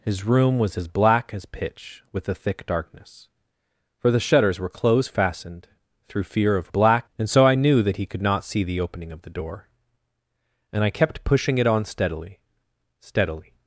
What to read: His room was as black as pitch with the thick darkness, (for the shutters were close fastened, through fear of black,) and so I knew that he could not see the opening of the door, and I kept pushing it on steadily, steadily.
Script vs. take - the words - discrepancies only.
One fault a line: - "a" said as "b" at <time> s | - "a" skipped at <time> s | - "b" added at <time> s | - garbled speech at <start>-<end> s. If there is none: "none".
none